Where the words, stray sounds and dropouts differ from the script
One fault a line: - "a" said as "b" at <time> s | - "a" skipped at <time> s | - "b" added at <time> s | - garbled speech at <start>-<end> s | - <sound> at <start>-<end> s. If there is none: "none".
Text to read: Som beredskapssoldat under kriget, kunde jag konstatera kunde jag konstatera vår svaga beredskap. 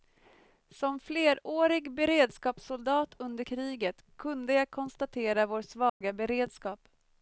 - "flerårig" added at 1.0 s
- "kunde jag konstatera" skipped at 5.5 s
- dropout at 5.9-6.0 s